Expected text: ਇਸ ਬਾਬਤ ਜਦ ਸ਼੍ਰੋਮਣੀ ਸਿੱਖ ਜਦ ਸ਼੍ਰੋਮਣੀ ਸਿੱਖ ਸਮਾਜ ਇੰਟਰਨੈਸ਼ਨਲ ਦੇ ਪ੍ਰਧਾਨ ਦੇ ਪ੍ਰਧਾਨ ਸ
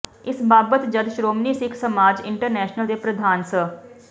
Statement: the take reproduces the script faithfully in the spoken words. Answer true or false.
false